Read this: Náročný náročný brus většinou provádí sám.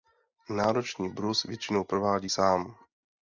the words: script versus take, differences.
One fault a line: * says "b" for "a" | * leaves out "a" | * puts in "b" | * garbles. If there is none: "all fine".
* leaves out "náročný"